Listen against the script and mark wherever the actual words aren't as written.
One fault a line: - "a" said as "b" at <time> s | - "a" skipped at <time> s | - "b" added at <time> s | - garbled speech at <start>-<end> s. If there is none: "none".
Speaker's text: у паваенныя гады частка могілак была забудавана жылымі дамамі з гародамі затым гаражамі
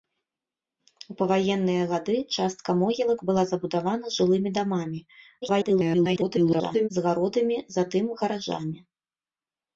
- garbled speech at 5.4-6.9 s